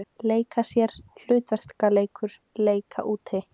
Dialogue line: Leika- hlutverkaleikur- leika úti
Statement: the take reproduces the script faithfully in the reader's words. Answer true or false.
false